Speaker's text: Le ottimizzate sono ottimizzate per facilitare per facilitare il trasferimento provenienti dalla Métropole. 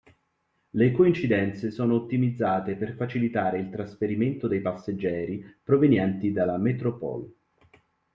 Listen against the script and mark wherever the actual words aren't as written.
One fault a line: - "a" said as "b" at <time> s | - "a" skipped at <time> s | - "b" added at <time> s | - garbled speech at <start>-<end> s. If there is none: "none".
- "ottimizzate" said as "coincidenze" at 0.9 s
- "per facilitare il trasferimento" said as "il trasferimento dei passeggeri" at 3.6 s